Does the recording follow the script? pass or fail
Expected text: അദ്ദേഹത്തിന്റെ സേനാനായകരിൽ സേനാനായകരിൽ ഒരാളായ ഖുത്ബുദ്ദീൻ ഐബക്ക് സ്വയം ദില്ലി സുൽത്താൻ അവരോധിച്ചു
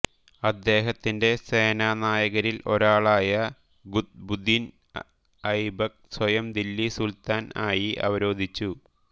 fail